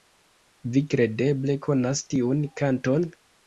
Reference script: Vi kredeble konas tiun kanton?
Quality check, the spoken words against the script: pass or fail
pass